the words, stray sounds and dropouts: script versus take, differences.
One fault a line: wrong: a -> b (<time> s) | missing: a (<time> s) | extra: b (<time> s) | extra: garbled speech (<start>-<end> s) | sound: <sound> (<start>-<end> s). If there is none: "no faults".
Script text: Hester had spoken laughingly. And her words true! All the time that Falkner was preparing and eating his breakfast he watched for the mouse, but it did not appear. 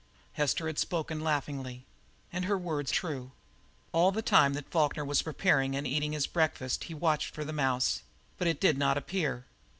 no faults